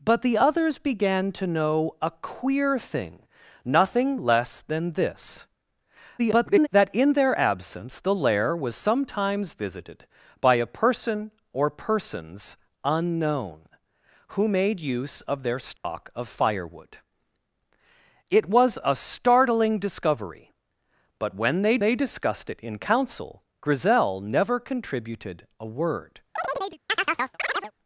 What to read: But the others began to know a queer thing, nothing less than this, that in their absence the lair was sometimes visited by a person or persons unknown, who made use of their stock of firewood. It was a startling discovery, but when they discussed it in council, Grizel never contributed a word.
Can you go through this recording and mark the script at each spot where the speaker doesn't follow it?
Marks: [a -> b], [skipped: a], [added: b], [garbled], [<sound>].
But the others began to know a queer thing, nothing less than this, [garbled] that in their absence the lair was sometimes visited by a person or persons unknown, who made use of their stock [dropout] of firewood. It was a startling discovery, but when they [added: they] discussed it in council, Grizel never contributed a word. [chirp]